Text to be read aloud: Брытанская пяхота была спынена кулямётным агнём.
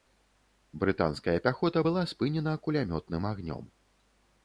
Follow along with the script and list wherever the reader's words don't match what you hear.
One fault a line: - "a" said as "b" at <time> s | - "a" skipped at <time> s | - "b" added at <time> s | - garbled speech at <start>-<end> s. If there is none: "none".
none